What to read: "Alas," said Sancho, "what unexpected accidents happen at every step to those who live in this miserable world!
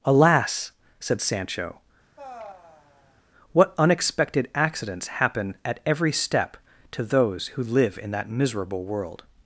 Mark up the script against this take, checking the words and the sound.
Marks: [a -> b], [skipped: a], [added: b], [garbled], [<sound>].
"Alas," said Sancho, [sigh] "what unexpected accidents happen at every step to those who live in [this -> that] miserable world!